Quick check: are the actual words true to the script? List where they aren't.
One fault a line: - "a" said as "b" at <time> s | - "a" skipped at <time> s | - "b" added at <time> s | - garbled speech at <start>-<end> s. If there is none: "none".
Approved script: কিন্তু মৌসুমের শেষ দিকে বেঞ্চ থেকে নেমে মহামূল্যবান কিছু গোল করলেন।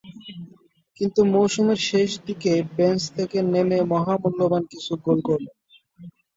none